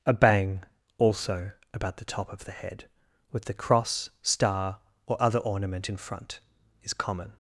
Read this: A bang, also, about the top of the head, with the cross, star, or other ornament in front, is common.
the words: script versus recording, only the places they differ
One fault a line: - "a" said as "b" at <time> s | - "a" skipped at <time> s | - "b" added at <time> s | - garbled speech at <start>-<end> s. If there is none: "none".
none